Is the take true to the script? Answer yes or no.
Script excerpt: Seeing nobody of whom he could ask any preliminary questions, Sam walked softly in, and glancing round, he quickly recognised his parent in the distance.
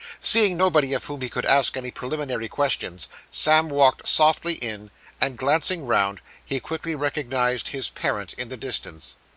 yes